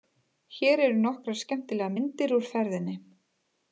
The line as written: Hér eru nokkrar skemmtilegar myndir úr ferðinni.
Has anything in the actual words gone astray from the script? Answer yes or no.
no